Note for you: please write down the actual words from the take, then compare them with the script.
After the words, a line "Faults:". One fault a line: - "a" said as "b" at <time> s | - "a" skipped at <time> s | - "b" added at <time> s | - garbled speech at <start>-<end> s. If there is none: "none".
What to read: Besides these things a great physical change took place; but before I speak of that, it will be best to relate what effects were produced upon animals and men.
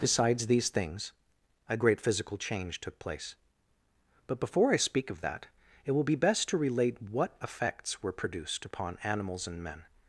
Besides these things a great physical change took place; but before I speak of that, it will be best to relate what effects were produced upon animals and men.
Faults:
none